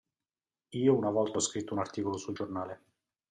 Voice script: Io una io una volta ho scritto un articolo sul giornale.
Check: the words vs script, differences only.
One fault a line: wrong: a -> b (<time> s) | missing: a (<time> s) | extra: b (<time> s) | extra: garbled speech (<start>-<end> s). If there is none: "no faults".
missing: io una (1.1 s)